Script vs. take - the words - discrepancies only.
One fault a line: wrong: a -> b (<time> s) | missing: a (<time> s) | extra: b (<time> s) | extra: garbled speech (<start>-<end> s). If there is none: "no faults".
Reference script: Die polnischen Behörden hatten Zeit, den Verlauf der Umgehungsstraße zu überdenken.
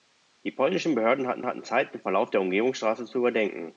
extra: hatten (1.5 s)